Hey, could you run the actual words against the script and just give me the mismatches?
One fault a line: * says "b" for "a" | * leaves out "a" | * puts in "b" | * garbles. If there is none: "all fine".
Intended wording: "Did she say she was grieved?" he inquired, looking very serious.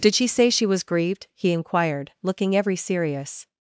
* says "every" for "very"